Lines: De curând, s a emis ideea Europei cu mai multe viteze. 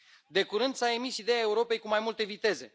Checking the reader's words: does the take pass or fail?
pass